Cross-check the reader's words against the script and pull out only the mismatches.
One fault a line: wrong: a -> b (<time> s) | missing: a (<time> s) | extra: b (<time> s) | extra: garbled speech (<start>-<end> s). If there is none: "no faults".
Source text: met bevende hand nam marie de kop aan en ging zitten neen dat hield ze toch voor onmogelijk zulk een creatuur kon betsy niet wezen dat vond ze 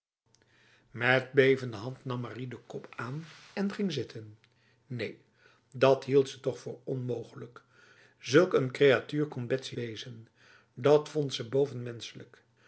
missing: niet (9.8 s)